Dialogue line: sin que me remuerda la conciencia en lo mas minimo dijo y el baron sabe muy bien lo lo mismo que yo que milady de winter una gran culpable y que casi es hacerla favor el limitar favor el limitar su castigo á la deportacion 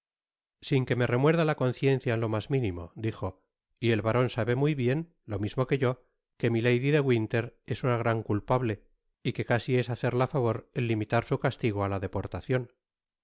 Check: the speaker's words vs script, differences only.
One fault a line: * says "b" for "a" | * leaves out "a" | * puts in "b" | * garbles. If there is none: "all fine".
* leaves out "lo"
* puts in "es"
* leaves out "favor el limitar"